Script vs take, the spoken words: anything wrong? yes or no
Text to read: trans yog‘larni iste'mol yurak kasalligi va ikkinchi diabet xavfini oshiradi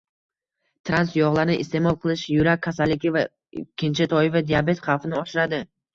yes